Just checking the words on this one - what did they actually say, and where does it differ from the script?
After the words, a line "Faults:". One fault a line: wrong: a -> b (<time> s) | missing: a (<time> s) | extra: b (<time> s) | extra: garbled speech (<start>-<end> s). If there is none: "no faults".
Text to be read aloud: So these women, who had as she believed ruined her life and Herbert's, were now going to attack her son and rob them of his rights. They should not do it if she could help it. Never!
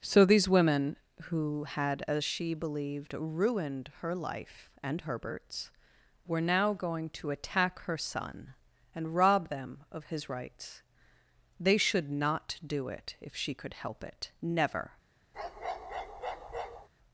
So these women, who had as she believed ruined her life and Herbert's, were now going to attack her son and rob them of his rights. They should not do it if she could help it. Never!
Faults:
no faults